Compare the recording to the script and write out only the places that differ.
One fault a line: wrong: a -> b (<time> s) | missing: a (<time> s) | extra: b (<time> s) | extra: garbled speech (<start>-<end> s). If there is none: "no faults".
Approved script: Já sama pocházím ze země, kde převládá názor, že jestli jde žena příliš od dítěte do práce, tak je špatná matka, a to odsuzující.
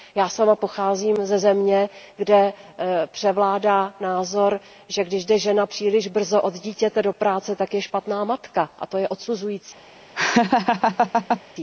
wrong: jestli -> když (5.0 s)
extra: brzo (6.1 s)
extra: je (9.0 s)